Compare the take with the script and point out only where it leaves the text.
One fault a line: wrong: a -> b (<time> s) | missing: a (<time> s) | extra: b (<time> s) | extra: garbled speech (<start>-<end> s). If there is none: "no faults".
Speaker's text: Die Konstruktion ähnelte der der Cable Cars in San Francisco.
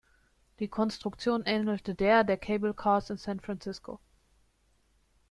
no faults